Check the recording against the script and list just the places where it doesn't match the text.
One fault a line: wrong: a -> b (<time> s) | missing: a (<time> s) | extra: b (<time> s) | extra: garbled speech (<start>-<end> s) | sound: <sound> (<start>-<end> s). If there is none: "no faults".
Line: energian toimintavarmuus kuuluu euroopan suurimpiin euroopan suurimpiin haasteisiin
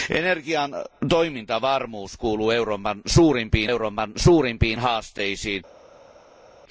no faults